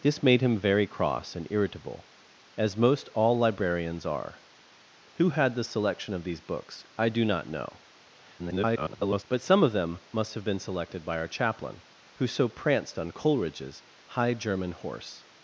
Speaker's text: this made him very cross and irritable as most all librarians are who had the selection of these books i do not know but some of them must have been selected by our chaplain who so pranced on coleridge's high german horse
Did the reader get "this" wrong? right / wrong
right